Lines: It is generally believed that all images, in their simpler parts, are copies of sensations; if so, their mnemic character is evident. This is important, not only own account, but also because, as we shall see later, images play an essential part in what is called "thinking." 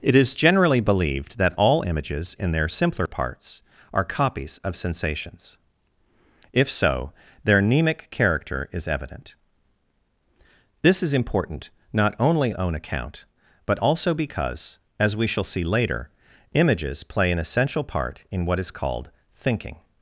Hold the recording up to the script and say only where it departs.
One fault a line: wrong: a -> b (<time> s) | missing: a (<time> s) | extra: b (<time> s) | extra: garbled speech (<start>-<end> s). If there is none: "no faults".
no faults